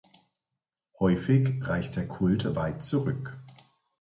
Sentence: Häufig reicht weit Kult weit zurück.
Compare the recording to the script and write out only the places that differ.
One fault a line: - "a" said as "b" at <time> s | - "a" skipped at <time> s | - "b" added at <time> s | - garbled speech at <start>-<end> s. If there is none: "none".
- "weit" said as "der" at 1.9 s